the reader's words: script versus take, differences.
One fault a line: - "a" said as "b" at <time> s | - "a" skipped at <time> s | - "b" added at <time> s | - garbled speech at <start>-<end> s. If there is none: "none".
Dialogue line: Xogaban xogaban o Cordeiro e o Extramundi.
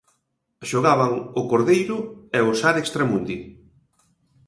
- "xogaban" skipped at 1.1 s
- "Sar" added at 2.6 s